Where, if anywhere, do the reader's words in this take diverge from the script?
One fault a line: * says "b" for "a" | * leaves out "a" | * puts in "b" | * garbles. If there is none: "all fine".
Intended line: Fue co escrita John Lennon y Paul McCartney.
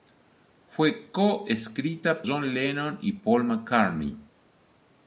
all fine